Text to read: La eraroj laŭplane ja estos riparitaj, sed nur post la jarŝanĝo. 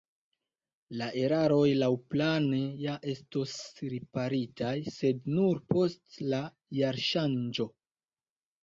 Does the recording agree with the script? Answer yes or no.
yes